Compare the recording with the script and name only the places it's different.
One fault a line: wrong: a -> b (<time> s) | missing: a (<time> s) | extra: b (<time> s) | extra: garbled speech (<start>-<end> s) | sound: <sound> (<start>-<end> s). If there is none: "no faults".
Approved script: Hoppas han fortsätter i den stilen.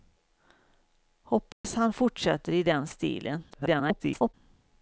sound: dropout (1.5-1.6 s)
extra: garbled speech (3.5-4.3 s)